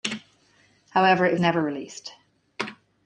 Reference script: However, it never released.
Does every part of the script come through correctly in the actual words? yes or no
yes